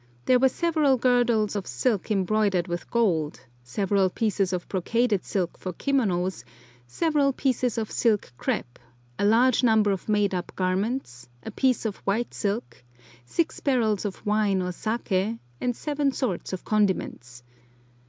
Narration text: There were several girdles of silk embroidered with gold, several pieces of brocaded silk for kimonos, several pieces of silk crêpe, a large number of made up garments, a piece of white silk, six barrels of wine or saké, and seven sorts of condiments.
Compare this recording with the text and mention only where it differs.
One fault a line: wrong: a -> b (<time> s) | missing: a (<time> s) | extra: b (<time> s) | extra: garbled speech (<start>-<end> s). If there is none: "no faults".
no faults